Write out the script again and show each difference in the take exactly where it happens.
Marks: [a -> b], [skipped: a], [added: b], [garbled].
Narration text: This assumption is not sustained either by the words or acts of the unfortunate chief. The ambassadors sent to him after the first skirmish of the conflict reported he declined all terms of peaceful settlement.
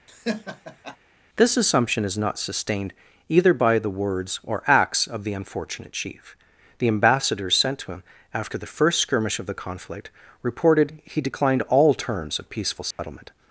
This assumption is not sustained either by the words or acts of the unfortunate chief. The ambassadors sent to him after the first skirmish of the conflict reported he declined all terms of peaceful settlement.